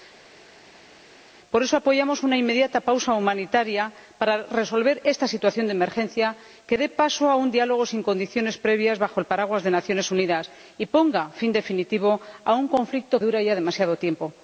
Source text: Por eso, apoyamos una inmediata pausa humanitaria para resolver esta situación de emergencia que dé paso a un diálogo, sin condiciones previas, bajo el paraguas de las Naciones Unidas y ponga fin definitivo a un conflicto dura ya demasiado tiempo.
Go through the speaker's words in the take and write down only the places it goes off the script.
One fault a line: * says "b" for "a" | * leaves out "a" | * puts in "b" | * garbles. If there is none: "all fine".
all fine